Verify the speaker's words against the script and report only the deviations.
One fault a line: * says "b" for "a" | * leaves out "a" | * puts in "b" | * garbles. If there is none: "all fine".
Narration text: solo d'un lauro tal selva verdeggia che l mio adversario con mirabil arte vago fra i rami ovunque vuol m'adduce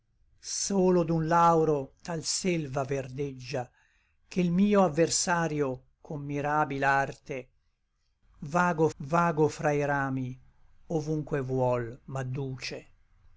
* puts in "vago"